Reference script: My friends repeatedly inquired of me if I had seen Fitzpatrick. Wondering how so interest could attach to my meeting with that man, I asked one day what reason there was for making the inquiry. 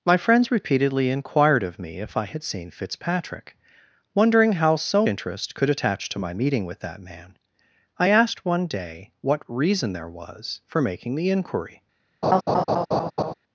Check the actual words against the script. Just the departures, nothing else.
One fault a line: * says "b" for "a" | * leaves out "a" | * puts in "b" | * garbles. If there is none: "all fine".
all fine